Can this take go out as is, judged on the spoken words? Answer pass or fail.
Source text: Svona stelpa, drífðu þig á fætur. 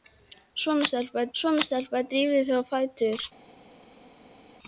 fail